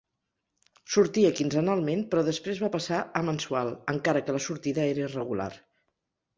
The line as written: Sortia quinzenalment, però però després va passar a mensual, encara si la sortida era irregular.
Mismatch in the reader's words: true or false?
true